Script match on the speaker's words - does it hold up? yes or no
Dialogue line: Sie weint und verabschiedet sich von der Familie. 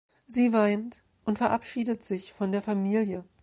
yes